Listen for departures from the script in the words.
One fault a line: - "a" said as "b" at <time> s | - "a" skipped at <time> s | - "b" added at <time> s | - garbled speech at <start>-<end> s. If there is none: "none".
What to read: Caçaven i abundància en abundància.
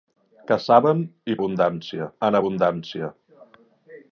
none